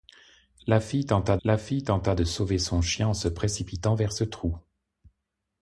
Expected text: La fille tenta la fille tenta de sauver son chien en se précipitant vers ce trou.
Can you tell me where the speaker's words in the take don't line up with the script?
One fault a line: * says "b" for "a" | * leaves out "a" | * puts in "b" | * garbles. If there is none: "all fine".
all fine